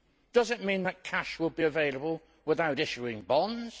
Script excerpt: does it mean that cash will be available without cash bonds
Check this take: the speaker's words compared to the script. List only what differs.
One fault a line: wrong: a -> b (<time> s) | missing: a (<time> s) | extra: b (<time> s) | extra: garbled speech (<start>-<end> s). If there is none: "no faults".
wrong: cash -> issuing (2.8 s)